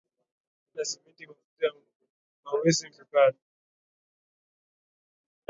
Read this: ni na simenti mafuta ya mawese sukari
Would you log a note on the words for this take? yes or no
no